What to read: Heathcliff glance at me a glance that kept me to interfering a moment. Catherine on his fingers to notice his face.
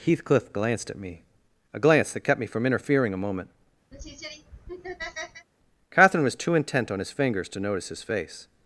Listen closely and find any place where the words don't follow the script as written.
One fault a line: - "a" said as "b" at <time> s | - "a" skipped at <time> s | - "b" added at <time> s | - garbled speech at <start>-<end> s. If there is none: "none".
- "glance" said as "glanced" at 0.5 s
- "to" said as "from" at 2.5 s
- "was too intent" added at 6.2 s